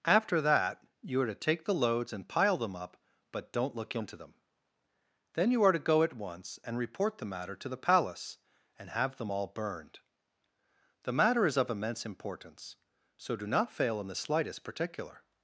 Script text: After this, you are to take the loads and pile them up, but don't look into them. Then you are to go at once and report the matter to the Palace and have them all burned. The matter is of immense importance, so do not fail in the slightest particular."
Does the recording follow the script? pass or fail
fail